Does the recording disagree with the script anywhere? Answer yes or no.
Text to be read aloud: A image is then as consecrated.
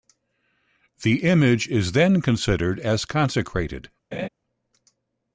yes